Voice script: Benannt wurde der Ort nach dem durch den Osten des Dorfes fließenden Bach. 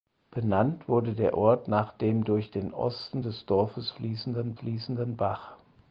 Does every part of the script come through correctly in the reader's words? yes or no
no